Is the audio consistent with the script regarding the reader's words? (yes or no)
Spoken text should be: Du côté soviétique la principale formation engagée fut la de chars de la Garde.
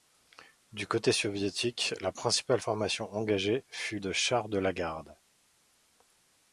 no